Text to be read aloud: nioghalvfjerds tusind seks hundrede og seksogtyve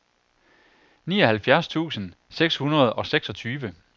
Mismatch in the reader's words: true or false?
false